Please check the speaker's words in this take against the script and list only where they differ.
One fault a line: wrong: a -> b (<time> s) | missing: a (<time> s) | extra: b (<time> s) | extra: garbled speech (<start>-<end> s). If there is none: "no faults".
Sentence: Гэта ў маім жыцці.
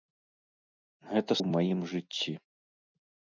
no faults